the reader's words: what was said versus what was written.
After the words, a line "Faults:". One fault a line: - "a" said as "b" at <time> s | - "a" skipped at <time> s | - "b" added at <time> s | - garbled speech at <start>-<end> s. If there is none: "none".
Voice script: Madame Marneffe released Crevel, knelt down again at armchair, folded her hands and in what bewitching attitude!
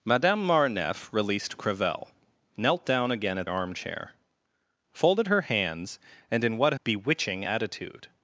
Madame Marneffe released Crevel, knelt down again at armchair, folded her hands and in what bewitching attitude!
Faults:
none